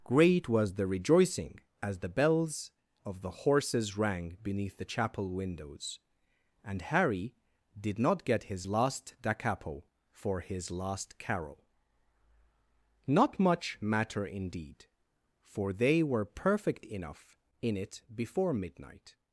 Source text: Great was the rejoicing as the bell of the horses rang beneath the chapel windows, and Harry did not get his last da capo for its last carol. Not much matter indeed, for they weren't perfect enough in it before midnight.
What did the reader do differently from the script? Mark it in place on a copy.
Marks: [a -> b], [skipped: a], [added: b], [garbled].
Great was the rejoicing as the [bell -> bells] of the horses rang beneath the chapel windows, and Harry did not get his last da capo for [its -> his] last carol. Not much matter indeed, for they [weren't -> were] perfect enough in it before midnight.